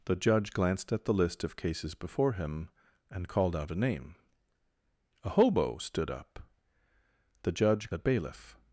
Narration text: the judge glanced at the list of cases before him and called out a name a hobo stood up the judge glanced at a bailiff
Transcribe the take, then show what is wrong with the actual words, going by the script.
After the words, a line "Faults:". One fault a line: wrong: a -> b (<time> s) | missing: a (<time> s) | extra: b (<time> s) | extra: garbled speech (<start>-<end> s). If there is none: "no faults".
the judge glanced at the list of cases before him and called out a name a hobo stood up the judge a bailiff
Faults:
missing: glanced at (7.9 s)